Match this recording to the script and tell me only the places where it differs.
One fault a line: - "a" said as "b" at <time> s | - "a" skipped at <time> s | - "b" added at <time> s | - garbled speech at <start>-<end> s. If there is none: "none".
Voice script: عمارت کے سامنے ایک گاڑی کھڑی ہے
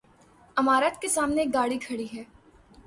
none